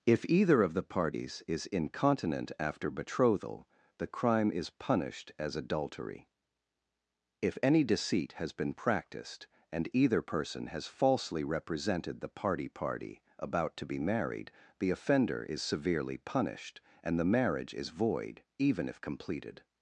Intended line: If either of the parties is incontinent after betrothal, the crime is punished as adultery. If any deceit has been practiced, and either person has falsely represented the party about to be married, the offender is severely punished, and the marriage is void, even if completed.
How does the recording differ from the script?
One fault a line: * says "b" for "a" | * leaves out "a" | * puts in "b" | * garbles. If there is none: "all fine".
* puts in "party"